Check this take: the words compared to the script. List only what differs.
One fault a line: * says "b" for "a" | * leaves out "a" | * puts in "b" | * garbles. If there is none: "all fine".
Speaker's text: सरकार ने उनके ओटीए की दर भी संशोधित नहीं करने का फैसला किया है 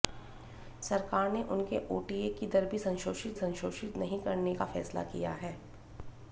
* puts in "संशोधित"